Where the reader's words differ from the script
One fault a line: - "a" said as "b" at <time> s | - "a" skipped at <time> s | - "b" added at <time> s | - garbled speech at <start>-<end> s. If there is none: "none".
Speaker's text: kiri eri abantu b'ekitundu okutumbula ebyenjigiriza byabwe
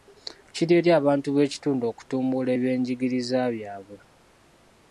none